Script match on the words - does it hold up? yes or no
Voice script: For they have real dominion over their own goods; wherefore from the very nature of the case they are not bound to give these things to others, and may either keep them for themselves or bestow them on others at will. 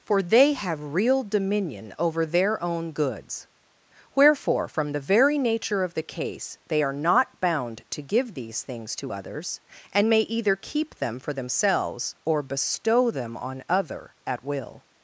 no